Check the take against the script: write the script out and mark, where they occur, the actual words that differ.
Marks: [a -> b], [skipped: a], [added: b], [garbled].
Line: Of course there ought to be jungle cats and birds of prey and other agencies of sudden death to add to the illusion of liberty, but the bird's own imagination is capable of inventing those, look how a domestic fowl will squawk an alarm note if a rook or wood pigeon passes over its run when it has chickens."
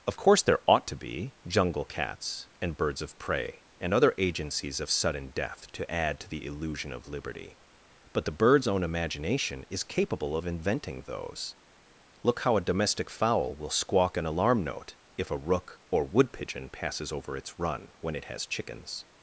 Of course there ought to be jungle cats and birds of prey and other agencies of sudden death to add to the illusion of liberty, but the bird's own imagination is capable of inventing those, look how a domestic fowl will squawk an alarm note if a rook or wood pigeon passes over its run when it has chickens."